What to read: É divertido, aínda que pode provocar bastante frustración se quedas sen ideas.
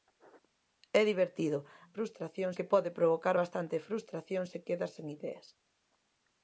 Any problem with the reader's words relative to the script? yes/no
yes